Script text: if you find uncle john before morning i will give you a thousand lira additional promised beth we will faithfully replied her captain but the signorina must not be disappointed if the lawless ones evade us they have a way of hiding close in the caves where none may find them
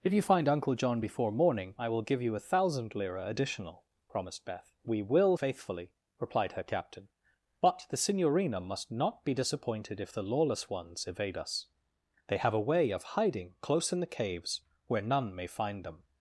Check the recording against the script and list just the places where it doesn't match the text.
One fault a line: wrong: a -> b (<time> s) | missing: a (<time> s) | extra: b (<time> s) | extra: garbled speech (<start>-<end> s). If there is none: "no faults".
no faults